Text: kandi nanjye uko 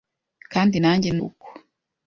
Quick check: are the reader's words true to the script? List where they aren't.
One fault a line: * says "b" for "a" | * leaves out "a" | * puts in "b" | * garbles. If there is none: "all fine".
all fine